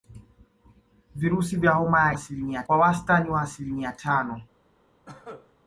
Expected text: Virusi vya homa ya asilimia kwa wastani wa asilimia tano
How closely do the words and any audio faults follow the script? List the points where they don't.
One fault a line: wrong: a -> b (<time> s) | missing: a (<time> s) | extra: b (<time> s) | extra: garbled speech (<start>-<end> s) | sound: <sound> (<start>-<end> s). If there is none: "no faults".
sound: cough (5.1-5.5 s)